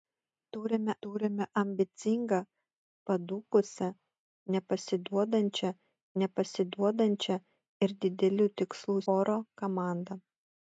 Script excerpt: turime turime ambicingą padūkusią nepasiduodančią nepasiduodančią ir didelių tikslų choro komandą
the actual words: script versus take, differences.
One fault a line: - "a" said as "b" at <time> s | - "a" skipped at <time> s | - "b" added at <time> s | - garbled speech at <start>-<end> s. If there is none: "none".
none